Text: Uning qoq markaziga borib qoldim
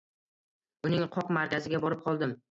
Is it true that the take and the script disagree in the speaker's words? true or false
false